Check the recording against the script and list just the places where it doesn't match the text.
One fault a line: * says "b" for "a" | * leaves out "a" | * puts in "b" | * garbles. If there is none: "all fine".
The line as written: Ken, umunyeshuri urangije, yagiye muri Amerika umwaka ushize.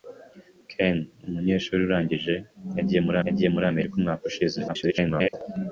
* puts in "yagiye muri"
* garbles